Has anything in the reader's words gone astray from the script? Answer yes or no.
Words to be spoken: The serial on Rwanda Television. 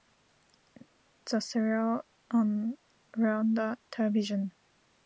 no